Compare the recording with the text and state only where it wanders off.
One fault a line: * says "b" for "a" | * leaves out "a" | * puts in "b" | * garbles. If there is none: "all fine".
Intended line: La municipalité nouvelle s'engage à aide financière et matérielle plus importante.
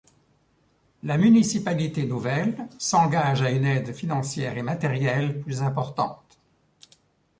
* puts in "une"